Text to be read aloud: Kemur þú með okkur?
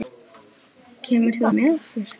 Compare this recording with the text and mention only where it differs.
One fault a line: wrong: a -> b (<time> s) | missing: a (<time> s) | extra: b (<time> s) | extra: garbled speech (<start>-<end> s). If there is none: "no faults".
no faults